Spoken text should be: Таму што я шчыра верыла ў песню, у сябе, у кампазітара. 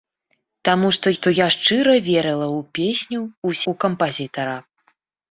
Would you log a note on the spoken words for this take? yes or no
yes